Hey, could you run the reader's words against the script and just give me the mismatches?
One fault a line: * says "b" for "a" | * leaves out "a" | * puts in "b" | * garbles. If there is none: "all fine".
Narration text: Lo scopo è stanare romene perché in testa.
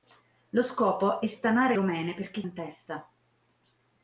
all fine